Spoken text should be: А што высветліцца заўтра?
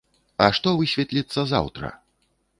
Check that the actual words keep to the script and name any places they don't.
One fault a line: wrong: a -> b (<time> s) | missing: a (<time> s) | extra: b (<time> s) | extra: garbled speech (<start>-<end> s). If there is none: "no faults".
no faults